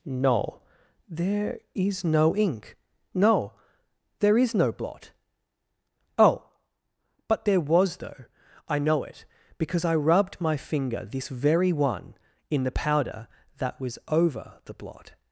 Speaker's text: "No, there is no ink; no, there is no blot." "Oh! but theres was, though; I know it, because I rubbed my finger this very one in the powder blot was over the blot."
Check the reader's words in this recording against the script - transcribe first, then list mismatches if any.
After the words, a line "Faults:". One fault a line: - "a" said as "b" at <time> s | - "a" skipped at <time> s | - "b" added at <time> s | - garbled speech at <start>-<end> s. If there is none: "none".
"No, there is no ink; no, there is no blot." "Oh! but there was, though; I know it, because I rubbed my finger this very one in the powder that was over the blot."
Faults:
- "theres" said as "there" at 7.5 s
- "blot" said as "that" at 13.6 s